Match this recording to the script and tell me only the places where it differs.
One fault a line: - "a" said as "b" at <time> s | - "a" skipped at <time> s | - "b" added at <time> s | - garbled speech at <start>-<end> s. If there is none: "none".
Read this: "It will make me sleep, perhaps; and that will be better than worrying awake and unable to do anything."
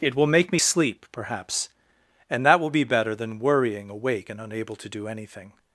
none